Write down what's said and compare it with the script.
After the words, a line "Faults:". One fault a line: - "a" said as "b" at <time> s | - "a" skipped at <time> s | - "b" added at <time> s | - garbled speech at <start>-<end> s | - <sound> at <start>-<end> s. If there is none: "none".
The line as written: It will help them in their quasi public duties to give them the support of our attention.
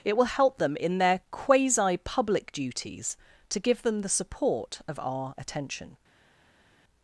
It will help them in their quasi public duties to give them the support of our attention.
Faults:
none